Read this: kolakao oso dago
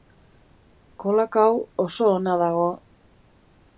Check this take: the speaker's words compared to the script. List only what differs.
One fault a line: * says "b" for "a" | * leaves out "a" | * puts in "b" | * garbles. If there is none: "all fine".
* puts in "ona"